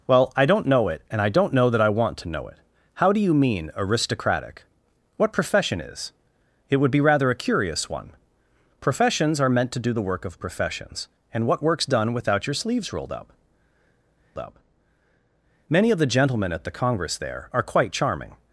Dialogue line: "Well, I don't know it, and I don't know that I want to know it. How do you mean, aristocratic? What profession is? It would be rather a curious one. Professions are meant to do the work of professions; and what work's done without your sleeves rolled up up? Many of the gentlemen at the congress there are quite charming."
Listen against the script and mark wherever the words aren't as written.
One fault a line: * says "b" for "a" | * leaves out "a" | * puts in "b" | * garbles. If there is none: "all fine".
all fine